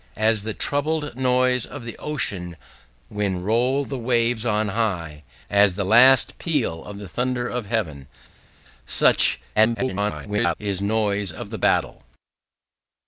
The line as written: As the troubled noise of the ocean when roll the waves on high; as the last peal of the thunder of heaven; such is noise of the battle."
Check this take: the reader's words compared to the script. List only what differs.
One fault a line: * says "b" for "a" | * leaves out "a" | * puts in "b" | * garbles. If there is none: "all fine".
* garbles